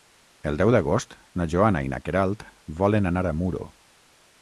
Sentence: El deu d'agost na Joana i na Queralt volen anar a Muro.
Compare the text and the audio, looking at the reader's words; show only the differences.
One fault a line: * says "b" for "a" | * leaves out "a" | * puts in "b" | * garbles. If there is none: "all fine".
all fine